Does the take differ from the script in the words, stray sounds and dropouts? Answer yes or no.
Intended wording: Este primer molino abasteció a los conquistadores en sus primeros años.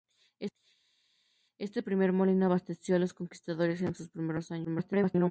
yes